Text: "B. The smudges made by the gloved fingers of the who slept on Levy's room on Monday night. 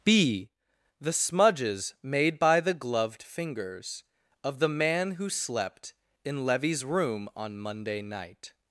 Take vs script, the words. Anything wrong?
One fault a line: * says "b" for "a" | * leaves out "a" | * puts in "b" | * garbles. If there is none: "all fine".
* puts in "man"
* says "in" for "on"